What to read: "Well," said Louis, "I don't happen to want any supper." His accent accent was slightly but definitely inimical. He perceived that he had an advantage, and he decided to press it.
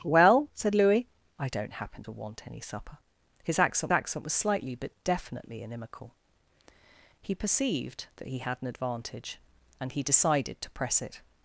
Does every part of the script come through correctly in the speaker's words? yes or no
yes